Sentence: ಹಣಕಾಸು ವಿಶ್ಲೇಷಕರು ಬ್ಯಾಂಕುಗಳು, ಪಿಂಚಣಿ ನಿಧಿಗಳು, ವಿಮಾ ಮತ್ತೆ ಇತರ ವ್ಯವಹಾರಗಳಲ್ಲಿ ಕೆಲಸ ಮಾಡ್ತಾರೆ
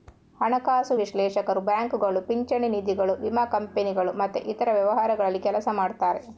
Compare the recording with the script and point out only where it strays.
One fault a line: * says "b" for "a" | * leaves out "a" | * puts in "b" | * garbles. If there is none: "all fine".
* puts in "ಕಂಪನಿಗಳು"